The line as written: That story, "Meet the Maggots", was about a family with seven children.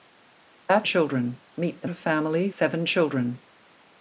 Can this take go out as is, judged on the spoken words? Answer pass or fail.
fail